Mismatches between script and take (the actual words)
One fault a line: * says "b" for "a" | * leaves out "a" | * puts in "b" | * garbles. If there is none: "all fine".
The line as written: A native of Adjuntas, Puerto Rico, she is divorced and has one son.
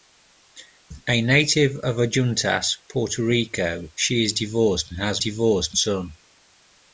* says "divorced" for "one"